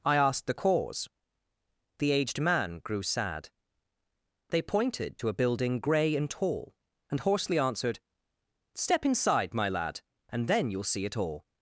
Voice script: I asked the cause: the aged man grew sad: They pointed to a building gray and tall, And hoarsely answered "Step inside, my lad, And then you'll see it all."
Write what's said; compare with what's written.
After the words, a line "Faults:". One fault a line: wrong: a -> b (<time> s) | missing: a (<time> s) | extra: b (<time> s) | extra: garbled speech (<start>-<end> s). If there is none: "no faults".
I asked the cause: the aged man grew sad: They pointed to a building gray and tall, And hoarsely answered "Step inside, my lad, And then you'll see it all."
Faults:
no faults